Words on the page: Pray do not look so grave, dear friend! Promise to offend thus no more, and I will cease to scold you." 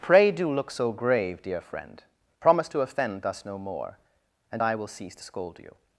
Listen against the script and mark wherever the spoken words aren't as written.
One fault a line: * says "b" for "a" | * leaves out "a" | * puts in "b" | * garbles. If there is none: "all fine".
* leaves out "not"